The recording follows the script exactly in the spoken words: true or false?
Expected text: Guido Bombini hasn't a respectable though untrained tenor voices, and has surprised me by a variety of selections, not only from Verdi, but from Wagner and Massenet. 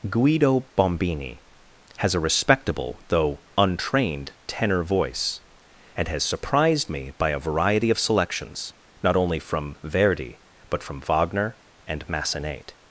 false